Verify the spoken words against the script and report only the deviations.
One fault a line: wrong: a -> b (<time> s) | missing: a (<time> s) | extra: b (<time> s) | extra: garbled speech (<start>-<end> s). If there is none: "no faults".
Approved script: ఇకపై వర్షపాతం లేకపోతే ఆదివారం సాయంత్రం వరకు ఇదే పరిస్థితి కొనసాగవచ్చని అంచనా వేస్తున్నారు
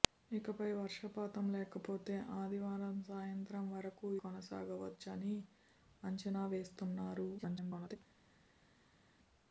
missing: ఇదే పరిస్థితి (4.1 s)
extra: garbled speech (7.4-8.0 s)